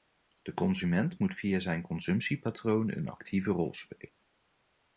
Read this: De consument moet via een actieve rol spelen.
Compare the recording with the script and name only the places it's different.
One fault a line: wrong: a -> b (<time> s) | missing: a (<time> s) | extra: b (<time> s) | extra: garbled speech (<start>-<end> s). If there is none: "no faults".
extra: zijn consumptiepatroon (1.6 s)